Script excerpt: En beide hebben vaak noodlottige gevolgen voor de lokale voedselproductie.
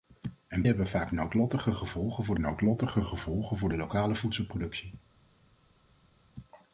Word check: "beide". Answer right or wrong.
wrong